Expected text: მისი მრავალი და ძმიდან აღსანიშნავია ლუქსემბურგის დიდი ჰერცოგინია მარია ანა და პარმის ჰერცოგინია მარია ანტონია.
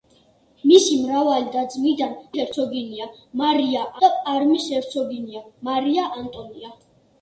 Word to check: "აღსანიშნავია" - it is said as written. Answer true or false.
false